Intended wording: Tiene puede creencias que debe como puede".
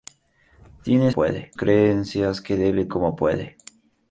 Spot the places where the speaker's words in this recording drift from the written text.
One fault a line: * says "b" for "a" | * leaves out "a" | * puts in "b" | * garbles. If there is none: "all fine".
all fine